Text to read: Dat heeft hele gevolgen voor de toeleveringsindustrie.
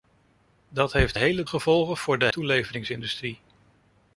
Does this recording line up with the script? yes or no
yes